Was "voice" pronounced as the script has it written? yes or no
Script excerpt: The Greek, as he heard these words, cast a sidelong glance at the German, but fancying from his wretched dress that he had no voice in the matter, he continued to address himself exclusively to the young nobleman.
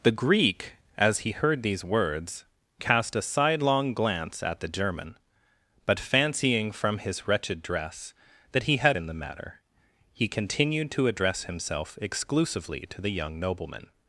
no